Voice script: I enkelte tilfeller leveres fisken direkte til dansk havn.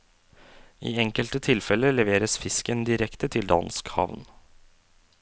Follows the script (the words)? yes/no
yes